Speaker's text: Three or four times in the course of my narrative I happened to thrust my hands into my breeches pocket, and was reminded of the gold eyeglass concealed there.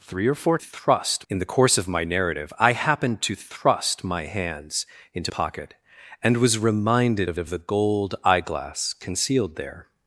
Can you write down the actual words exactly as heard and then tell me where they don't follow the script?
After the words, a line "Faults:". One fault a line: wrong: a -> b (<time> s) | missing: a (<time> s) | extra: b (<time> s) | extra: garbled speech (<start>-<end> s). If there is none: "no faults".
Three or four thrust in the course of my narrative I happened to thrust my hands into pocket, and was reminded of of the gold eyeglass concealed there.
Faults:
wrong: times -> thrust (0.6 s)
missing: my breeches (5.3 s)
extra: of (7.4 s)